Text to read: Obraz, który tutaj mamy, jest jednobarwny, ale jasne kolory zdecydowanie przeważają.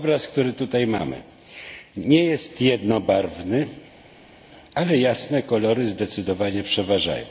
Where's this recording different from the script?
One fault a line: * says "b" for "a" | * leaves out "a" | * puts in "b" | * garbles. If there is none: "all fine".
* puts in "nie"